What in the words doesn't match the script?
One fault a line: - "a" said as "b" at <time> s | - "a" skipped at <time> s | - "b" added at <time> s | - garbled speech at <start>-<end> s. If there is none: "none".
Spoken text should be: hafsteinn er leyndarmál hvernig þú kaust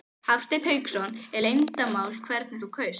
- "hauksson" added at 0.7 s